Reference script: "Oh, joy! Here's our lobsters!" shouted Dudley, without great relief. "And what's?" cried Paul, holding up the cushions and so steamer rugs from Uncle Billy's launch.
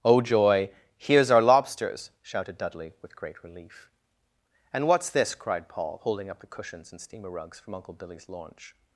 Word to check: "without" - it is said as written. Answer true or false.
false